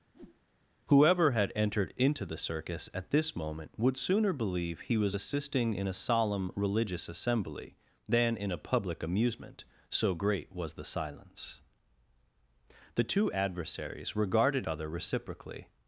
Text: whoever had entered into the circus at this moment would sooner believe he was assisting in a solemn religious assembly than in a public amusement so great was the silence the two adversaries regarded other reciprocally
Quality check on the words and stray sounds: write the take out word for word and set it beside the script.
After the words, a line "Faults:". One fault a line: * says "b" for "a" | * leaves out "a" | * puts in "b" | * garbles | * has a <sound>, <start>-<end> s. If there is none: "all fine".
whoever had entered into the circus at this moment would sooner believe he was assisting in a solemn religious assembly than in a public amusement so great was the silence the two adversaries regarded other reciprocally
Faults:
* has a whoosh, 0.1-0.4 s